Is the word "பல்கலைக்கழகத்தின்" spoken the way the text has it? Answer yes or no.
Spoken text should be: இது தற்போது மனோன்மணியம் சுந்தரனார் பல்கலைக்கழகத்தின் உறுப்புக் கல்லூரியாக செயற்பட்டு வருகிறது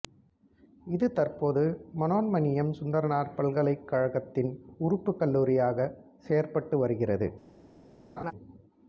yes